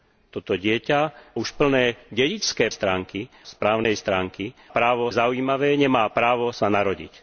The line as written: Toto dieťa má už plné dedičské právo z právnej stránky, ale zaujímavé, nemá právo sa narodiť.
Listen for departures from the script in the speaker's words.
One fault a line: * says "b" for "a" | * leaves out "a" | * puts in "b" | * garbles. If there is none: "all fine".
* leaves out "má"
* says "stránky" for "právo"
* says "právo" for "ale"